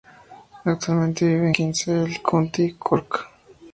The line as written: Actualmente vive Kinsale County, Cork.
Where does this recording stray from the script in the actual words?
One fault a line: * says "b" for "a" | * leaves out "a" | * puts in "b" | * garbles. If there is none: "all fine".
all fine